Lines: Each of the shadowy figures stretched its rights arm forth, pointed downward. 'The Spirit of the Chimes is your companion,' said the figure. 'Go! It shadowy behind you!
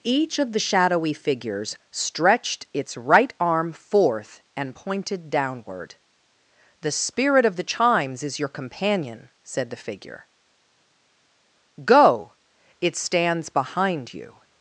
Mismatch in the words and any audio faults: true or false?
true